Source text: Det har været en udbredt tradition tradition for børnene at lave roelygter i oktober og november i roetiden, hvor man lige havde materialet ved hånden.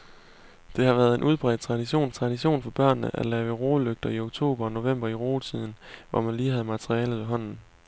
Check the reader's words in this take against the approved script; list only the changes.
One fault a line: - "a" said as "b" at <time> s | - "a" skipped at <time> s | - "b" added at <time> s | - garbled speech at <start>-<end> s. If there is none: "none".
none